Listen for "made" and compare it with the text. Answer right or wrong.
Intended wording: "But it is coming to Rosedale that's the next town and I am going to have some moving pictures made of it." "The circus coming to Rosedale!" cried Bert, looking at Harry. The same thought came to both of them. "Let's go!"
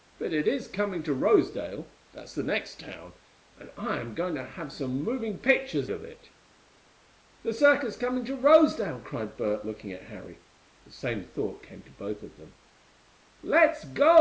wrong